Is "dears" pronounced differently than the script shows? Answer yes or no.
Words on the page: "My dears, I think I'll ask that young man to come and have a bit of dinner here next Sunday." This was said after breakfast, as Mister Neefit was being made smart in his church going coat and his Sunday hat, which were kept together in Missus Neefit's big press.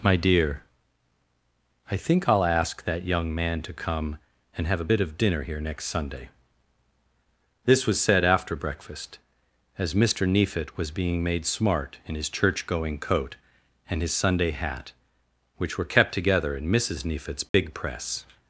yes